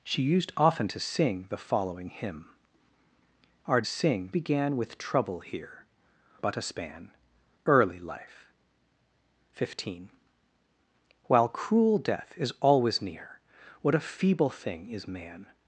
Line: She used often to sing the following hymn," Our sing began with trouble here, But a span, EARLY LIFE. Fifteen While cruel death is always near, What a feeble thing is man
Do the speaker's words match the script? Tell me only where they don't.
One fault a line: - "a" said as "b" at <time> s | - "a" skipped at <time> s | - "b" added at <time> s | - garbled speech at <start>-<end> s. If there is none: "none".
none